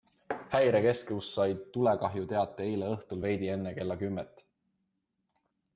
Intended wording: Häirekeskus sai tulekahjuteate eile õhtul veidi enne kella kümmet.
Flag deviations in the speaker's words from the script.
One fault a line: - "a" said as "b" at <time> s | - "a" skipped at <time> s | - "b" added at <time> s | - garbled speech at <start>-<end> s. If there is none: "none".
none